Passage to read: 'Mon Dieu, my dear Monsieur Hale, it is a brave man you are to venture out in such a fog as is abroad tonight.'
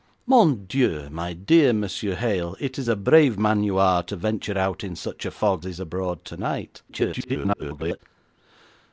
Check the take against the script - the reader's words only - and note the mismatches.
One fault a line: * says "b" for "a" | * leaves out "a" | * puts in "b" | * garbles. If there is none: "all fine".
* leaves out "as"
* garbles